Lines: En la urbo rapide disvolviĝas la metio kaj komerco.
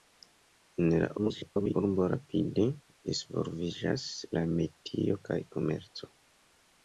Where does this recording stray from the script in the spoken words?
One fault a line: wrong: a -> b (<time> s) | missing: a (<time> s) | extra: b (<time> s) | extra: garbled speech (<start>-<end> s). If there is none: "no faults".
extra: garbled speech (1.2-1.7 s)